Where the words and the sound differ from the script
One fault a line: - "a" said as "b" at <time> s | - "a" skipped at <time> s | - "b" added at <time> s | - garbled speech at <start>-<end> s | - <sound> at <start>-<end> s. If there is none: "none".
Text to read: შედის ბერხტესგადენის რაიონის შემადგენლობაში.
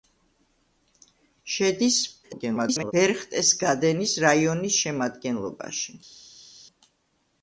- garbled speech at 2.2-2.9 s